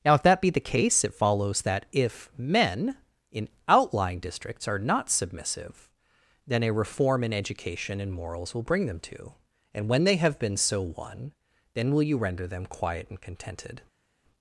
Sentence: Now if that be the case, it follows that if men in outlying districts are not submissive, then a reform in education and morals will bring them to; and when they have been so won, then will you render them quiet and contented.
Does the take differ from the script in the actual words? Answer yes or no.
no